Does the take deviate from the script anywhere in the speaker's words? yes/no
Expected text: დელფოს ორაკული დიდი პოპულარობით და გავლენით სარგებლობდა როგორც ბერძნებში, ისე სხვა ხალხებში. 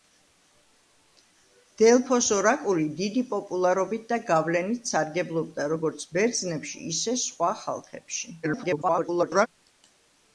yes